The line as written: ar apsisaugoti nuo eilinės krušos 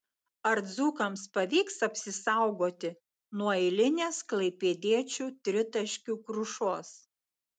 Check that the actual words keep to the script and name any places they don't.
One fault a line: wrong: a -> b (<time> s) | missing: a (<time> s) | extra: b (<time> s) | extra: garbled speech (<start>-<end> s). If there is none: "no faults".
extra: dzūkams pavyks (0.7 s)
extra: klaipėdiečių tritaškių (4.3 s)